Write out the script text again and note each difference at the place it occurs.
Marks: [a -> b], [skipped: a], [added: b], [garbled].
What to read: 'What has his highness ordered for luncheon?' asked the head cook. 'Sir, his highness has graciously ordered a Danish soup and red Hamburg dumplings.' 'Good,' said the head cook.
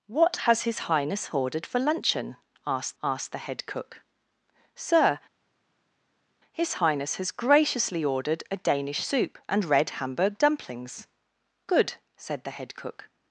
'What has his highness ordered for luncheon?' asked [added: asked] the head cook. 'Sir, his highness has graciously ordered a Danish soup and red Hamburg dumplings.' 'Good,' said the head cook.